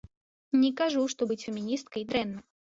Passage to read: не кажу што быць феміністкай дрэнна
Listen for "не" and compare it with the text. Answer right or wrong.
right